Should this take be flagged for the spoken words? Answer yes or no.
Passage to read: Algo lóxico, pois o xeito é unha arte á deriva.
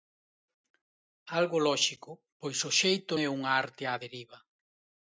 no